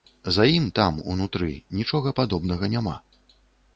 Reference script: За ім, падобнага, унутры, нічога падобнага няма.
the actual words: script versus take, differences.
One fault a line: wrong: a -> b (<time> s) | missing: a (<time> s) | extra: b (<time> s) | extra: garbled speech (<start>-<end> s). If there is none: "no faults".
wrong: падобнага -> там (0.8 s)